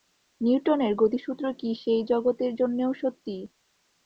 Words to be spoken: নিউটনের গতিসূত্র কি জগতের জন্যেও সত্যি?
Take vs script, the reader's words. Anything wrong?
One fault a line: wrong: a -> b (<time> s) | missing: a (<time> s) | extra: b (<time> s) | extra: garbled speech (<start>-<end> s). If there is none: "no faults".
extra: সেই (1.8 s)